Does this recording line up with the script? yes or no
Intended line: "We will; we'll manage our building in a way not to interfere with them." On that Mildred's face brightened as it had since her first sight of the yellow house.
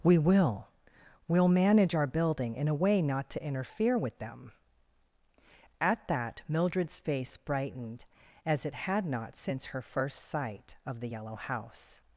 no